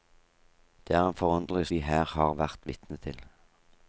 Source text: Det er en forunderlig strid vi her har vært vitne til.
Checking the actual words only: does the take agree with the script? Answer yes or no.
no